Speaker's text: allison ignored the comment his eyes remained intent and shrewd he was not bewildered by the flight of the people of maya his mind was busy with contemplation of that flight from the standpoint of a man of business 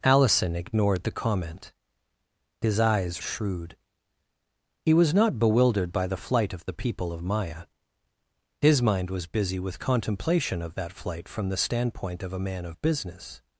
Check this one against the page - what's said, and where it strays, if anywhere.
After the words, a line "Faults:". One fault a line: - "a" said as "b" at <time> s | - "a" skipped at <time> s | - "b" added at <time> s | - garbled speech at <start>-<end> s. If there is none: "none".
allison ignored the comment his eyes shrewd he was not bewildered by the flight of the people of maya his mind was busy with contemplation of that flight from the standpoint of a man of business
Faults:
- "remained intent and" skipped at 3.2 s